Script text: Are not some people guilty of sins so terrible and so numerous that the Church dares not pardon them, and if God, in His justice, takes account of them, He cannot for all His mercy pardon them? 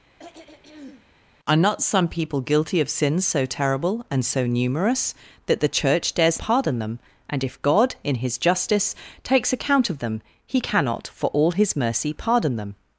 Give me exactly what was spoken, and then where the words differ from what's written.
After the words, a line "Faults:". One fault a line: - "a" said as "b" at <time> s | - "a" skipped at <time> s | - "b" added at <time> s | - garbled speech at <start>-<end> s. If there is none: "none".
Are not some people guilty of sins so terrible and so numerous that the Church dares pardon them, and if God, in His justice, takes account of them, He cannot for all His mercy pardon them?
Faults:
- "not" skipped at 6.4 s